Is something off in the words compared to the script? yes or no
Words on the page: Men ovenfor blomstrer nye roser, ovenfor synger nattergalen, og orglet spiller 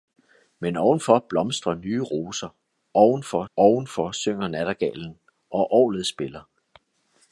yes